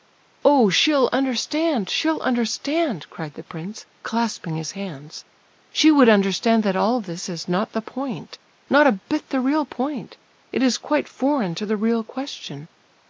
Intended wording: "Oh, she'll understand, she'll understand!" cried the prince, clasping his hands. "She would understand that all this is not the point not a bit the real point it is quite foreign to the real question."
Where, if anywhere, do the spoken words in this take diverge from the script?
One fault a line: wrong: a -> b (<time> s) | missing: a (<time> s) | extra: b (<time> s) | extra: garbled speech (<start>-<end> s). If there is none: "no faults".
no faults